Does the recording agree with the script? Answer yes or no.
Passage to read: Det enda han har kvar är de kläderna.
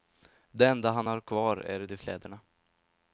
yes